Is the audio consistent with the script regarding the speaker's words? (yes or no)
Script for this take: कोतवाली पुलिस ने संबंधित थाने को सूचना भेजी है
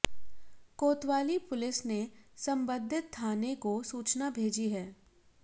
yes